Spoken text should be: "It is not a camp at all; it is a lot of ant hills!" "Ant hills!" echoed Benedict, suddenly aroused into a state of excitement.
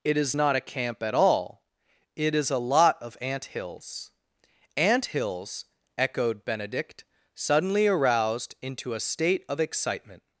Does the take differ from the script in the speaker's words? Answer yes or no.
no